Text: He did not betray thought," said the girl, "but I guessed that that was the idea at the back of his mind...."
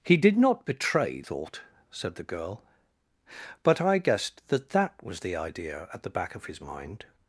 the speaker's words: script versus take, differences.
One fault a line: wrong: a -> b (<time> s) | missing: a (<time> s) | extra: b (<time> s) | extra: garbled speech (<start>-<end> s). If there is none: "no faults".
no faults